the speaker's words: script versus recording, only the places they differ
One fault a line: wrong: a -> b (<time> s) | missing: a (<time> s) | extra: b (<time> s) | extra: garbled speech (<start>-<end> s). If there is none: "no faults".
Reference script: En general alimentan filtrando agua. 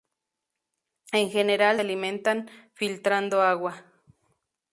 no faults